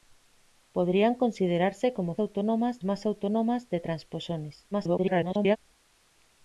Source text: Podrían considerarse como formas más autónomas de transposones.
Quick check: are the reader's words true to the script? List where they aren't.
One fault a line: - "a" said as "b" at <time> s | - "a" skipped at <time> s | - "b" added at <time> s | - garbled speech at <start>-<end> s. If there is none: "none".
- "formas" said as "autónomas" at 2.2 s
- garbled speech at 4.7-5.6 s